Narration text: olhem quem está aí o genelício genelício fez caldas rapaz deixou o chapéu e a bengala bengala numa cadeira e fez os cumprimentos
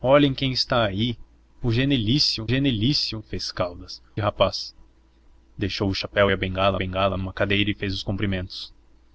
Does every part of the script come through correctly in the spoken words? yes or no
yes